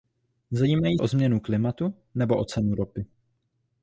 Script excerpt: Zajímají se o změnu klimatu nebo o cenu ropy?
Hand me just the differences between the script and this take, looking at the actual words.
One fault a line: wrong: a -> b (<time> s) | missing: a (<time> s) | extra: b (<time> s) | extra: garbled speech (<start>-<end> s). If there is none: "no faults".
missing: se (1.0 s)